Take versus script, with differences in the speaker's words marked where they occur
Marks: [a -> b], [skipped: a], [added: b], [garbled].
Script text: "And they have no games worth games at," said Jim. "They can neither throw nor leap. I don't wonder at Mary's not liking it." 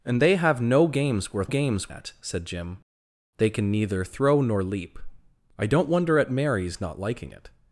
"And they have no games worth games at," said Jim. "They can neither throw nor leap. I don't wonder at Mary's not liking it."